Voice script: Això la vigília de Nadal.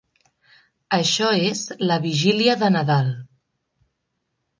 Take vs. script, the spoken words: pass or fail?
fail